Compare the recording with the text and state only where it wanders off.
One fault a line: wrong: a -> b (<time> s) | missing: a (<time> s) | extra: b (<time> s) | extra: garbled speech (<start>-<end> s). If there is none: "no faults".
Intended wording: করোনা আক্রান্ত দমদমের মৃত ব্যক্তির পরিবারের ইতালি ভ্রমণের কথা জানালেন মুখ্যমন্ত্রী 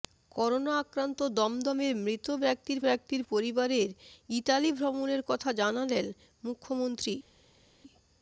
extra: ব্যক্তির (2.8 s)